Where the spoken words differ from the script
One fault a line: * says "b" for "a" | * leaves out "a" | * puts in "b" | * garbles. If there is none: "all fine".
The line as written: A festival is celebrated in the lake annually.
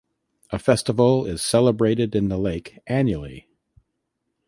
all fine